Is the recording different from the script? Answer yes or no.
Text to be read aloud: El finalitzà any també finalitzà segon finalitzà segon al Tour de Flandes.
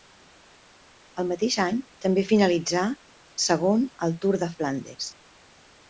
yes